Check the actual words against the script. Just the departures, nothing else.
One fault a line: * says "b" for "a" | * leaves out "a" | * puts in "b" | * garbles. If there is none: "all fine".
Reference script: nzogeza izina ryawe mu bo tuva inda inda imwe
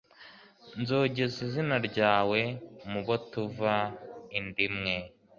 * leaves out "inda"